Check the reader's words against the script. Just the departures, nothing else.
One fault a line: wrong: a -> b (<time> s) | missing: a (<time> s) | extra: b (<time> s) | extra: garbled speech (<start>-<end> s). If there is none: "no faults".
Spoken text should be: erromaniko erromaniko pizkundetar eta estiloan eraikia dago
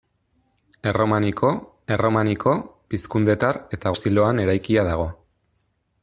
no faults